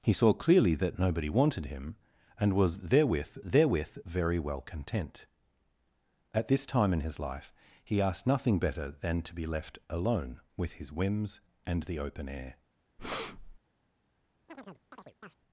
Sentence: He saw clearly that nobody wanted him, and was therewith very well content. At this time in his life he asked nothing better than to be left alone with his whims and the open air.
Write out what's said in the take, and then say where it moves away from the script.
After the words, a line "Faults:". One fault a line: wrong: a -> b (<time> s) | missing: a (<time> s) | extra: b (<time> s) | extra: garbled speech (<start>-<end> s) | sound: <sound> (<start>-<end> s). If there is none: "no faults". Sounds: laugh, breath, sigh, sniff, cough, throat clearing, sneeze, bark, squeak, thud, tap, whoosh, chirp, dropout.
He saw clearly that nobody wanted him, and was therewith therewith very well content. At this time in his life he asked nothing better than to be left alone with his whims and the open air.
Faults:
extra: therewith (3.4 s)
sound: breath (13.0-13.6 s)
sound: chirp (14.5-15.4 s)